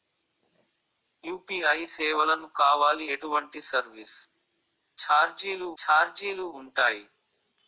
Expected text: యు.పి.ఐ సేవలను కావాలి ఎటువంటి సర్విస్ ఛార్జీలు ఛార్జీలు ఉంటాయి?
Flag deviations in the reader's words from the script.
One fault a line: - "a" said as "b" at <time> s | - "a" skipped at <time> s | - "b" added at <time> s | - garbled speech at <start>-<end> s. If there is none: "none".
none